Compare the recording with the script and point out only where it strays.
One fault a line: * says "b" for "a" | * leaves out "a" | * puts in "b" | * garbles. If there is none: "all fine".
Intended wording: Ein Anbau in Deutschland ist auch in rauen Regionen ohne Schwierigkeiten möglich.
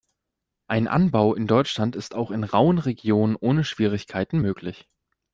all fine